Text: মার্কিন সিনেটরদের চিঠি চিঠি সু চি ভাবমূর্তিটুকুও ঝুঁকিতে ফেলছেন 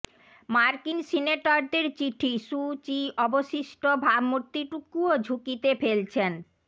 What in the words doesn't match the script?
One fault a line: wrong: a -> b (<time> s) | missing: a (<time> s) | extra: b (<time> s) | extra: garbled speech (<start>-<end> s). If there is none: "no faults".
missing: চিঠি (2.3 s)
extra: অবশিষ্ট (3.2 s)